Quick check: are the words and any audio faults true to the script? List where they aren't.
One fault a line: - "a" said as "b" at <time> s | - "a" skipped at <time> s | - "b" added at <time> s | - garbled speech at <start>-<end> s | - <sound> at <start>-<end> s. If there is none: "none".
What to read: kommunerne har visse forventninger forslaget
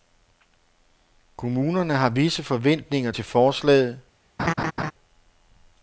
- "til" added at 3.1 s
- laugh at 4.4-4.9 s